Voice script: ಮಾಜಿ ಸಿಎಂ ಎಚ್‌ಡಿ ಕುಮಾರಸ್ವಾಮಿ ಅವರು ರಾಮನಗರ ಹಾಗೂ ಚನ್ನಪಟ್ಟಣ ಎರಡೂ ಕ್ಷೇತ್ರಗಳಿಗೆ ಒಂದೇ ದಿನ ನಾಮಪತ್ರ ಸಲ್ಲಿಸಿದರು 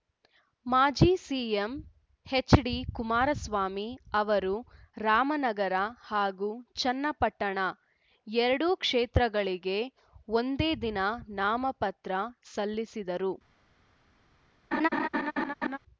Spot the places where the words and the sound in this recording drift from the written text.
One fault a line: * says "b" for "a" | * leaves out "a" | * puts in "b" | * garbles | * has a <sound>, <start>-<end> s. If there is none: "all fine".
* has a laugh, 14.7-15.8 s